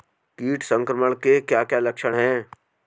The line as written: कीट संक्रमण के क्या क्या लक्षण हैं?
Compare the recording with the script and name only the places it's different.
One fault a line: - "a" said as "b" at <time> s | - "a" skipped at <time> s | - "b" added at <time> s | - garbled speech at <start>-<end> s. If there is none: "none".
none